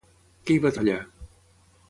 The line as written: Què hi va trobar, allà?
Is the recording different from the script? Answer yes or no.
yes